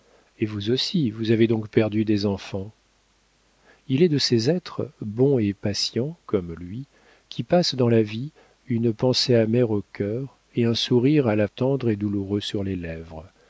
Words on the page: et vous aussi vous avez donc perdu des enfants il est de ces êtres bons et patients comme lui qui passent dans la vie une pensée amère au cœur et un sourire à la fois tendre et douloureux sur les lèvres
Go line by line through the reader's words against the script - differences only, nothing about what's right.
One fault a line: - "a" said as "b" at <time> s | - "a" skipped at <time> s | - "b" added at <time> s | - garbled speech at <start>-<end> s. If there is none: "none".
- "fois" skipped at 11.5 s